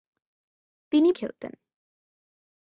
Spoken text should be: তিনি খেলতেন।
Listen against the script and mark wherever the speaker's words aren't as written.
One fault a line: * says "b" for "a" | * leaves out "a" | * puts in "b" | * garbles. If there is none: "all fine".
all fine